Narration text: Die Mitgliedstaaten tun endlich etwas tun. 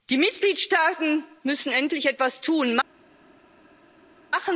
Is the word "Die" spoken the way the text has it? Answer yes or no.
yes